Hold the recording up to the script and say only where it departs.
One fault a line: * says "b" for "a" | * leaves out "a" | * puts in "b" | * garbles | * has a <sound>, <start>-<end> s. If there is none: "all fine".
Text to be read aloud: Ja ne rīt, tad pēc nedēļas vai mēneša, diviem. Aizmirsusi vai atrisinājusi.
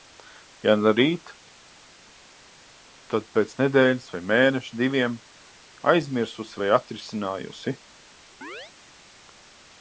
* has a chirp, 8.4-8.7 s